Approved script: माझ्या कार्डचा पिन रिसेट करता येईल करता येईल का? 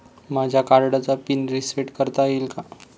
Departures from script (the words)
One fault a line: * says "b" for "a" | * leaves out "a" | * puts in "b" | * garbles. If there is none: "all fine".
* leaves out "करता येईल"